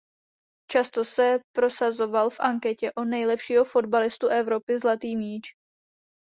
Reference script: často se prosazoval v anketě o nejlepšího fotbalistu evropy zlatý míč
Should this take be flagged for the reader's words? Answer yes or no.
no